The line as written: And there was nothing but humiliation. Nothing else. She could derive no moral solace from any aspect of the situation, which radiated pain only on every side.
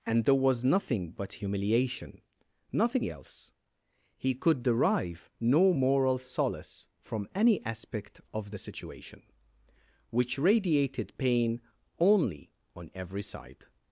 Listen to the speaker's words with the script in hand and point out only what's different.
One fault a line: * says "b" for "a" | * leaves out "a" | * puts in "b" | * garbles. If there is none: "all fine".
* says "He" for "She"